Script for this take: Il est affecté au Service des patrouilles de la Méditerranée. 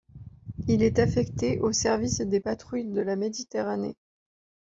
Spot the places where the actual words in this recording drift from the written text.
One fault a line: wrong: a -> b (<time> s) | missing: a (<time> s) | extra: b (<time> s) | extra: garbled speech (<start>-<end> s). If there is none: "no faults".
no faults